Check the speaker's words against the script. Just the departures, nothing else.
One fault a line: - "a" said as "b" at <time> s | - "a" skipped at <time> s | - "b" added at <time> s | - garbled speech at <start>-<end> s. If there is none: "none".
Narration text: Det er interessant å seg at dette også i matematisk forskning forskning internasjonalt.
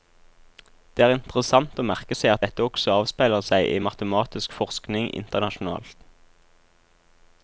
- "merke" added at 1.9 s
- "avspeiler seg" added at 3.0 s
- "forskning" skipped at 5.1 s